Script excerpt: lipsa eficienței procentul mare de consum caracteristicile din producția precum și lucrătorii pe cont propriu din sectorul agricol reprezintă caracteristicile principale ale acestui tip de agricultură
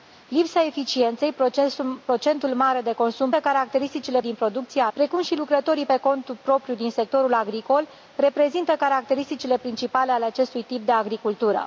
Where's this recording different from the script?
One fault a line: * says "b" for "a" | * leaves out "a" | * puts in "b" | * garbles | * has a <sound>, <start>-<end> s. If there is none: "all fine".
all fine